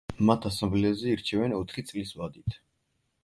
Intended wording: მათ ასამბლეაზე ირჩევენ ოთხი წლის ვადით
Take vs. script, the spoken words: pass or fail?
pass